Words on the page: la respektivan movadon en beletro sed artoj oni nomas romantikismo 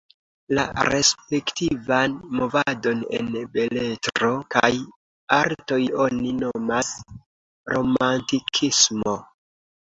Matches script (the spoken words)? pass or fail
fail